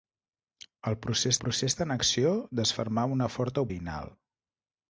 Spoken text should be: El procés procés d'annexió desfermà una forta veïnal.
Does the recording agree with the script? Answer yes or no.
yes